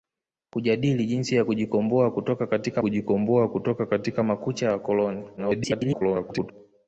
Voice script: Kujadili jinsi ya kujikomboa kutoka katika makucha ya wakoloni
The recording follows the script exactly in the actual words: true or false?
false